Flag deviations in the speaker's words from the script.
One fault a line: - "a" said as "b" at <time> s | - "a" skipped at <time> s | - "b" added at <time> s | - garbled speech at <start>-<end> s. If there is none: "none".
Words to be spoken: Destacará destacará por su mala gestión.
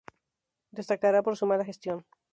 - "destacará" skipped at 1.2 s